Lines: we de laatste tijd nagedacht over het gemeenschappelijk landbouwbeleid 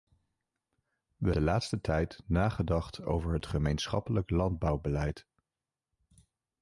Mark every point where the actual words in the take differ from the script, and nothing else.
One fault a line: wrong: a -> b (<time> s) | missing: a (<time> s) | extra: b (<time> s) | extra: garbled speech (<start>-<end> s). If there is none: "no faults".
no faults